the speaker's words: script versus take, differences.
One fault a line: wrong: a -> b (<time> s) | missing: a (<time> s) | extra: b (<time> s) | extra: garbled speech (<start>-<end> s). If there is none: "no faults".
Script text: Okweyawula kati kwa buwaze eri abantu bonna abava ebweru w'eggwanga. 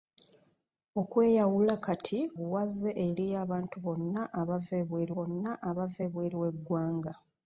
missing: kwa (2.2 s)
extra: bonna abava ebweru (5.1 s)